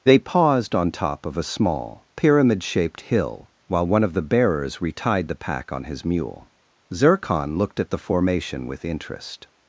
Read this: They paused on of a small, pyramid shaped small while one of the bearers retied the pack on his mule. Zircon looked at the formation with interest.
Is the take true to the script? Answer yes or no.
no